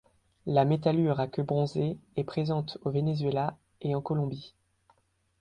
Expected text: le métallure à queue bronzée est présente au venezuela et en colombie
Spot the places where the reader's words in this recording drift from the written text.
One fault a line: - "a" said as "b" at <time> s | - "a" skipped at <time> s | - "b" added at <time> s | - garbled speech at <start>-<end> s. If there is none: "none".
- "le" said as "la" at 0.5 s